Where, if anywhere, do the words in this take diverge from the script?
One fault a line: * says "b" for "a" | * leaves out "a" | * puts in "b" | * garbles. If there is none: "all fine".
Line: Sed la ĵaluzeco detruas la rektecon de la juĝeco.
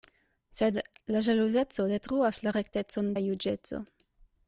* leaves out "de"